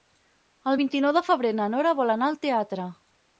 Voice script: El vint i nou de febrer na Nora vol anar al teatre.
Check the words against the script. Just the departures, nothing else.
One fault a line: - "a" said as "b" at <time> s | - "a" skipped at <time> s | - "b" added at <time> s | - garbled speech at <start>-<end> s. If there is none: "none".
none